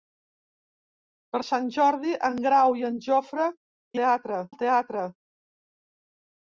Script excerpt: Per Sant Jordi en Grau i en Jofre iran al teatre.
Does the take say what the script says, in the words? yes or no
no